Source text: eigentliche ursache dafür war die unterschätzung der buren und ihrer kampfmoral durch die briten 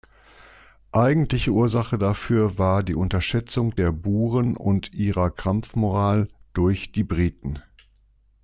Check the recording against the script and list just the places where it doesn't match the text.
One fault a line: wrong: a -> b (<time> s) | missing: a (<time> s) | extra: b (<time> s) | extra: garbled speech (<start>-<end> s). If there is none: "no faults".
no faults